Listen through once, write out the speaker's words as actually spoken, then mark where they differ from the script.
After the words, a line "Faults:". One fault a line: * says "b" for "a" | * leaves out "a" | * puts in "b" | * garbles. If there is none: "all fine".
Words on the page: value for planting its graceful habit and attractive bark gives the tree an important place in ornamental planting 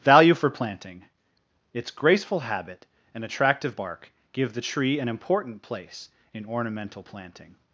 value for planting its graceful habit and attractive bark give the tree an important place in ornamental planting
Faults:
* says "give" for "gives"